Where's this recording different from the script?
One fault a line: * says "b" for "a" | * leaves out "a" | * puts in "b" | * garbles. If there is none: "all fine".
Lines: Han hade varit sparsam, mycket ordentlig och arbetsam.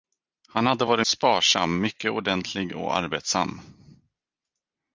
all fine